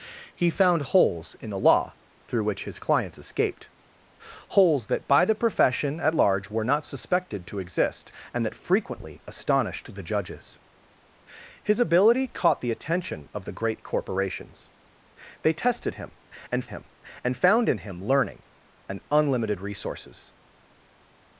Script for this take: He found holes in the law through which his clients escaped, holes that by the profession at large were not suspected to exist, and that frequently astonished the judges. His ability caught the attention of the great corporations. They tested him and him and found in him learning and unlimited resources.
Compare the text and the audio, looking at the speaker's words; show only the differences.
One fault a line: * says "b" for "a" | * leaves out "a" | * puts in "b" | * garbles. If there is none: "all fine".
all fine